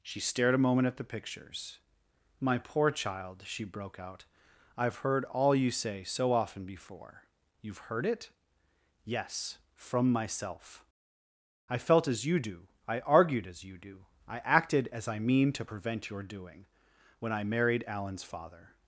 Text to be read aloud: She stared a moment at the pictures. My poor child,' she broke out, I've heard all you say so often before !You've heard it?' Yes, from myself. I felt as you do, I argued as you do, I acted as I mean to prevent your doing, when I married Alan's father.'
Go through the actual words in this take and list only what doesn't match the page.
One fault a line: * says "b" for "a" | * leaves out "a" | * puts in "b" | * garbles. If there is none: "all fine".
all fine